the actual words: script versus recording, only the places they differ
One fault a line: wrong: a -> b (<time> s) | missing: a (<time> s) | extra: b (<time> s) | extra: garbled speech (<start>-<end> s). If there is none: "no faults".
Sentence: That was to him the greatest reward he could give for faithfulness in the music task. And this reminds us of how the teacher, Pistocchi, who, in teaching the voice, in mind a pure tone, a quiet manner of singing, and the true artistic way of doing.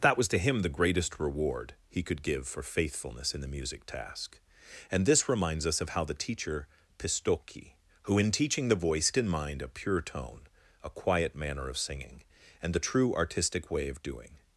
no faults